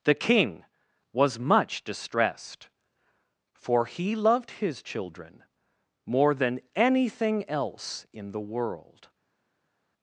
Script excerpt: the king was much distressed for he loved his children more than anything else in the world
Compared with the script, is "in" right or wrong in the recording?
right